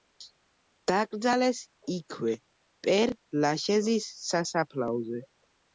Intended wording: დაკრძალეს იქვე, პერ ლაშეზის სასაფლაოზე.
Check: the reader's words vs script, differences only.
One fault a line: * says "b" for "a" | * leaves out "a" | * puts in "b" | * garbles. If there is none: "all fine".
all fine